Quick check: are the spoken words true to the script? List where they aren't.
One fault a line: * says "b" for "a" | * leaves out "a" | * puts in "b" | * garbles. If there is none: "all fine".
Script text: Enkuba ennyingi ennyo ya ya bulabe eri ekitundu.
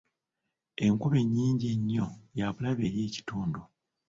* leaves out "ya"